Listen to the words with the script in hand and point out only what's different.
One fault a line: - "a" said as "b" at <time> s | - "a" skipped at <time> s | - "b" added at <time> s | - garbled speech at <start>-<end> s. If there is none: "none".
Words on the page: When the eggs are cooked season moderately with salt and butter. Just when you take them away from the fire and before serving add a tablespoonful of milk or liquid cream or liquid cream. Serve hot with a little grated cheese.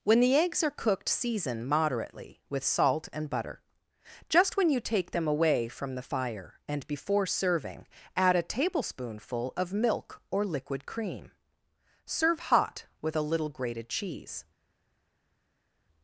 - "or liquid cream" skipped at 11.3 s